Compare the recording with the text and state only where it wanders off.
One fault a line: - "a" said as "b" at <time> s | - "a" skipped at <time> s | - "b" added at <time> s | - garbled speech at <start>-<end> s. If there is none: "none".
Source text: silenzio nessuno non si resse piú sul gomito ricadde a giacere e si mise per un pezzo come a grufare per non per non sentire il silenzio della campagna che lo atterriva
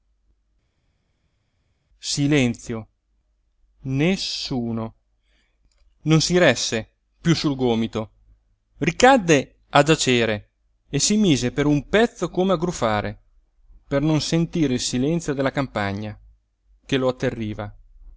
- "per non" skipped at 14.2 s